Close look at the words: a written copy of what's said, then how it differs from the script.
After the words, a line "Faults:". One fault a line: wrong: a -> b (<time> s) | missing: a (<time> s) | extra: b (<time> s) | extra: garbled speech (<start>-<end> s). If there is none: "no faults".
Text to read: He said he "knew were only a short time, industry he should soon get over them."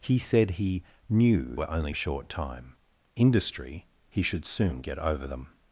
He said he "knew were only a short time, industry he should soon get over them."
Faults:
no faults